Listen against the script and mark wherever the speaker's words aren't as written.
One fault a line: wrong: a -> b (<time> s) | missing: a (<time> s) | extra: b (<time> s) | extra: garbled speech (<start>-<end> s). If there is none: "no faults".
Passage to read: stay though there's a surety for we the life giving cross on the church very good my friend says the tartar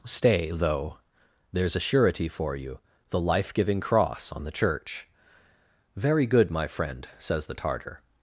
wrong: we -> you (2.5 s)